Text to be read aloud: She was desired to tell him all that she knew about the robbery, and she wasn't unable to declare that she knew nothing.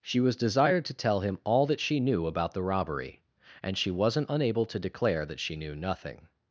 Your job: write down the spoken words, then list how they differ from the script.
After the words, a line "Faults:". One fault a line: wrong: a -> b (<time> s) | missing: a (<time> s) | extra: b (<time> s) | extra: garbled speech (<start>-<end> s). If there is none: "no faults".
She was desired to tell him all that she knew about the robbery, and she wasn't unable to declare that she knew nothing.
Faults:
no faults